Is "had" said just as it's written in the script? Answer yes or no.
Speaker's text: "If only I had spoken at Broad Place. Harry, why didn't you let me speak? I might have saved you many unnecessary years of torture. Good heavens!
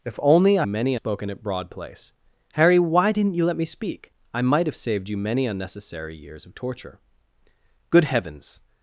no